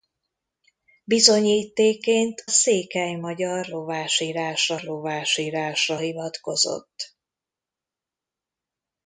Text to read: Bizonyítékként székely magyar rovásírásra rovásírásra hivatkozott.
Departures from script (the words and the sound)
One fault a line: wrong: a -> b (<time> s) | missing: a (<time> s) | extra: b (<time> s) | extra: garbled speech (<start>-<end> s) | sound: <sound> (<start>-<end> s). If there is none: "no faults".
no faults